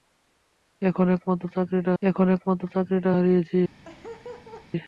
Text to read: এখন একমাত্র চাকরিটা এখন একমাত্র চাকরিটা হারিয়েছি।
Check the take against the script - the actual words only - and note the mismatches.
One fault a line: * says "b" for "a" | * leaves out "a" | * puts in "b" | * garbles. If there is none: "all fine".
all fine